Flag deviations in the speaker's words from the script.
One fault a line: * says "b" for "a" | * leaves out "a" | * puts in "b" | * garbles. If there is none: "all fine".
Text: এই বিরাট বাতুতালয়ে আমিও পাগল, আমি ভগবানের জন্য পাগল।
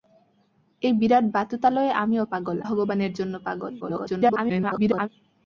* leaves out "আমি"
* garbles